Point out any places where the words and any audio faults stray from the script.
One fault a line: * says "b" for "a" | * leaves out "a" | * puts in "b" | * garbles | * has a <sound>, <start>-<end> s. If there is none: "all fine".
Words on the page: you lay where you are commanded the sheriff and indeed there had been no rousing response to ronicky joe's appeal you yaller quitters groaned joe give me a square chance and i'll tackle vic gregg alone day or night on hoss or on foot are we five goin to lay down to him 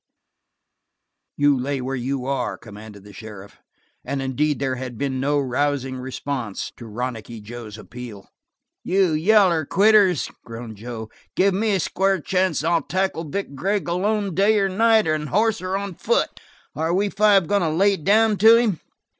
all fine